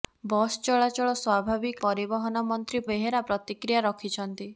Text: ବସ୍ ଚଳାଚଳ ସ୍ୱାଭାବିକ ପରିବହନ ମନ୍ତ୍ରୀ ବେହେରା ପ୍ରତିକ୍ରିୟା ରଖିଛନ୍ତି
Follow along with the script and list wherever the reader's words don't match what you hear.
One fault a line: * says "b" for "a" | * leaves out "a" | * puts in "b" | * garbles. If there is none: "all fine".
all fine